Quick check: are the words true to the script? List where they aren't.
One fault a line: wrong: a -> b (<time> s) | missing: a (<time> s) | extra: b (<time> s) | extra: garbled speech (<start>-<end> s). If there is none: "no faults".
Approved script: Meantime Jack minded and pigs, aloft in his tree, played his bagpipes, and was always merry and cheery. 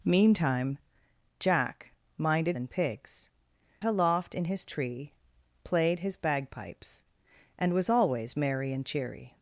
no faults